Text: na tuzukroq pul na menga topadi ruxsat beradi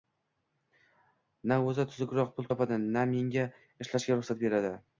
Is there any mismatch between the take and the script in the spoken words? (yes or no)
yes